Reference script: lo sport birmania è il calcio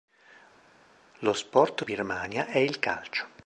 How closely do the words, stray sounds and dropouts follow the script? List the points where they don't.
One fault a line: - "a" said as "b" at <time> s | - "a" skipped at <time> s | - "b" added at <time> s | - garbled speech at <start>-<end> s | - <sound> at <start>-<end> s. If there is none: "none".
none